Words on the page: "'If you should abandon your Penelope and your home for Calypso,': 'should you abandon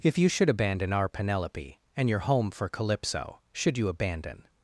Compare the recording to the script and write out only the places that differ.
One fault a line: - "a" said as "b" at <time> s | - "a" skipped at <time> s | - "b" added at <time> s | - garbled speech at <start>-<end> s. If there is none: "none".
- "your" said as "our" at 0.9 s